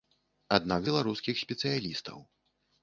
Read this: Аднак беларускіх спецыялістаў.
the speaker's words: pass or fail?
pass